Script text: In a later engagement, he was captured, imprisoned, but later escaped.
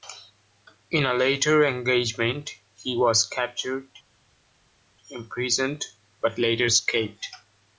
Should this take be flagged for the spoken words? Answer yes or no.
no